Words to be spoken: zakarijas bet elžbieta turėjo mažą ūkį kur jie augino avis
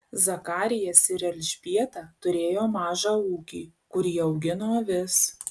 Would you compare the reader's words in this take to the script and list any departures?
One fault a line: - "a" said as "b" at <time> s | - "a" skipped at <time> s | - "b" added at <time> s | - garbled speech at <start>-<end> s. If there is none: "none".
- "bet" said as "ir" at 1.1 s